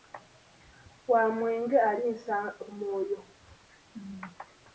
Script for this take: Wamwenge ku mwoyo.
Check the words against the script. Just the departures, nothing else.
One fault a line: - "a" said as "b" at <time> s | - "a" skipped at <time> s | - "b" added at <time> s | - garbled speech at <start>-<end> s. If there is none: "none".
none